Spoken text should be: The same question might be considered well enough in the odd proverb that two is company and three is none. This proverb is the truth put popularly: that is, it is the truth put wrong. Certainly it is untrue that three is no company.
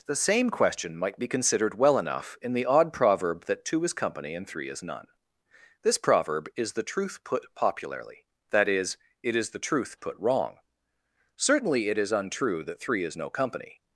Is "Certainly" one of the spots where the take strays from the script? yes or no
no